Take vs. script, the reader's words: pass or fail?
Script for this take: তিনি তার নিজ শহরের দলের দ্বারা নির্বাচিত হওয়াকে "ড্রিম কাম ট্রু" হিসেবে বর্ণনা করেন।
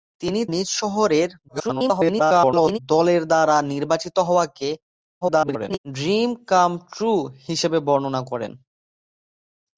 fail